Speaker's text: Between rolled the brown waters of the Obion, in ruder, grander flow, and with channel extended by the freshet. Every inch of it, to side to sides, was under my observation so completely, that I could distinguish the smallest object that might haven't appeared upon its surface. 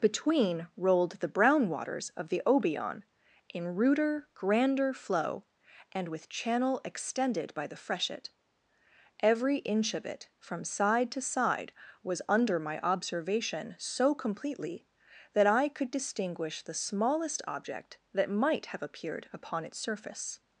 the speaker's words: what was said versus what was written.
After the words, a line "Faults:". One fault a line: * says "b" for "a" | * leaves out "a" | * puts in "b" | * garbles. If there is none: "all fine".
Between rolled the brown waters of the Obion, in ruder, grander flow, and with channel extended by the freshet. Every inch of it, from side to side, was under my observation so completely, that I could distinguish the smallest object that might have appeared upon its surface.
Faults:
* says "from" for "to"
* says "side" for "sides"
* says "have" for "haven't"